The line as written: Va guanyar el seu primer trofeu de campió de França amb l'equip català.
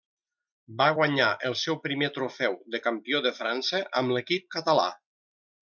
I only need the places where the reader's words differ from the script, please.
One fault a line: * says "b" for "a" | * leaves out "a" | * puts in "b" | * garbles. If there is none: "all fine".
all fine